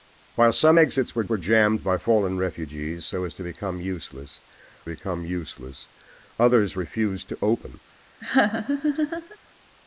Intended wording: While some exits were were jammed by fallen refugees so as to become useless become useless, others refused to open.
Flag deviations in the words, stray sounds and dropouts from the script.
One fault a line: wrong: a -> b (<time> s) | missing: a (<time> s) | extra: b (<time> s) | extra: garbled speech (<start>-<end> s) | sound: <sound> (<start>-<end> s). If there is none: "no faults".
sound: laugh (8.2-9.4 s)